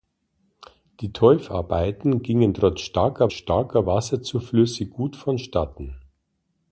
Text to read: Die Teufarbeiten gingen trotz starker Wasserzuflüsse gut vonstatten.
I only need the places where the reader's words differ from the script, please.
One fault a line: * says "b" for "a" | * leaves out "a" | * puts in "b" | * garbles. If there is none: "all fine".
* puts in "starker"